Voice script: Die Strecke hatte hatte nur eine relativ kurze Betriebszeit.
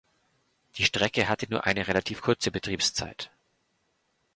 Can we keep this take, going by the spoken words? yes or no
no